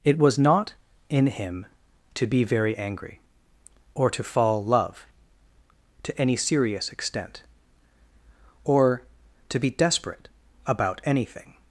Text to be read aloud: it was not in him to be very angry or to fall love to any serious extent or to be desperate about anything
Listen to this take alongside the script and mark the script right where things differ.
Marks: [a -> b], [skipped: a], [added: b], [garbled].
it was not in him to be very angry or to fall love to any serious extent or to be desperate about anything